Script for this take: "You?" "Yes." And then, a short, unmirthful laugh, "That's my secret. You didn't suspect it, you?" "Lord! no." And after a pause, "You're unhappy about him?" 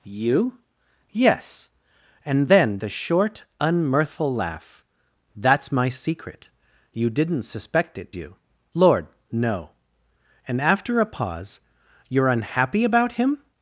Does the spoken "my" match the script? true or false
true